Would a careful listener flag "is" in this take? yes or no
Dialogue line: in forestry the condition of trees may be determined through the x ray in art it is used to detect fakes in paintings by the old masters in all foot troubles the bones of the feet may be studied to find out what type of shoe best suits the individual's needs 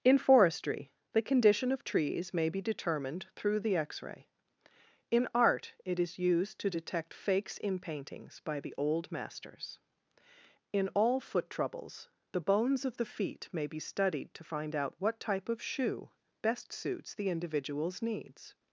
no